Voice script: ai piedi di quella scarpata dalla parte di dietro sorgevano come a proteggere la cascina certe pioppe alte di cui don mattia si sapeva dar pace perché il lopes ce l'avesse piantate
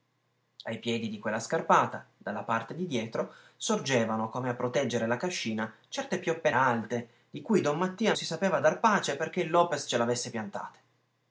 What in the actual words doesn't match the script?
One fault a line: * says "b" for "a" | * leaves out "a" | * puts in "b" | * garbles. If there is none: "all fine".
all fine